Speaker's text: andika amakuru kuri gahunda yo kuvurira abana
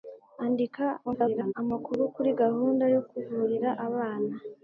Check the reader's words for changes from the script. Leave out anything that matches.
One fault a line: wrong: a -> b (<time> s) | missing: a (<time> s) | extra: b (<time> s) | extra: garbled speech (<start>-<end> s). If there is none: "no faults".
extra: garbled speech (1.0-1.5 s)